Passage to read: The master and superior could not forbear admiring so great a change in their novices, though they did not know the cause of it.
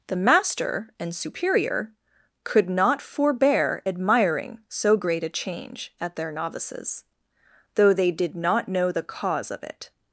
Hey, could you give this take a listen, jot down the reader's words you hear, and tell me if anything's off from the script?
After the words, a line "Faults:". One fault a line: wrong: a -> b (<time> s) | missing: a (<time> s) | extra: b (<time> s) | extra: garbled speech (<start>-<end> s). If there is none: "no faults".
The master and superior could not forbear admiring so great a change at their novices, though they did not know the cause of it.
Faults:
wrong: in -> at (6.0 s)